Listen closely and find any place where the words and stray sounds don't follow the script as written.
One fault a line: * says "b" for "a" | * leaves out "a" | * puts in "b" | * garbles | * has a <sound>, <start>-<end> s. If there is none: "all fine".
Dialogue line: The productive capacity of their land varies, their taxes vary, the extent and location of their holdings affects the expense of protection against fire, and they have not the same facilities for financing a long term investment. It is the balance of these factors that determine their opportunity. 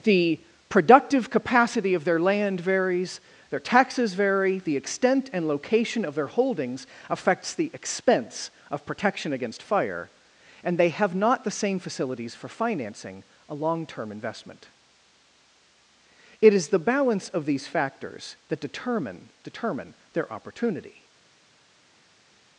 * puts in "determine"